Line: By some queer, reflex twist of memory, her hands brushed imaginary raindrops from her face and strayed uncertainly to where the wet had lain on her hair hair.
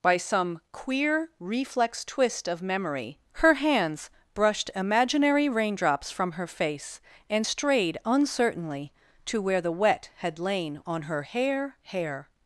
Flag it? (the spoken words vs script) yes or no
no